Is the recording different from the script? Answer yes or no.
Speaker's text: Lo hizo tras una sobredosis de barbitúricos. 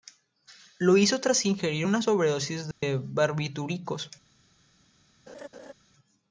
yes